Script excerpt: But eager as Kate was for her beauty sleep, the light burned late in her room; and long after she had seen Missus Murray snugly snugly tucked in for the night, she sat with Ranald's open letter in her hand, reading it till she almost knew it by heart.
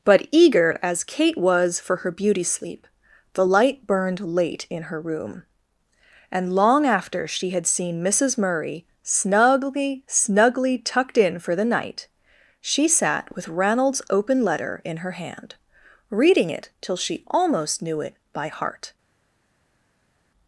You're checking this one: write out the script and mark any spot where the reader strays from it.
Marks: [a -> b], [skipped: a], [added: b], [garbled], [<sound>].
But eager as Kate was for her beauty sleep, the light burned late in her room; and long after she had seen Missus Murray snugly snugly tucked in for the night, she sat with Ranald's open letter in her hand, reading it till she almost knew it by heart.